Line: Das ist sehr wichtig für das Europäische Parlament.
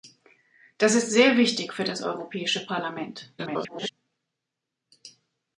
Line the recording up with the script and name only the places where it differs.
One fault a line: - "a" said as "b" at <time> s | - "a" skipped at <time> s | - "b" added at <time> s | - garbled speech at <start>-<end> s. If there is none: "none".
- garbled speech at 3.4-3.9 s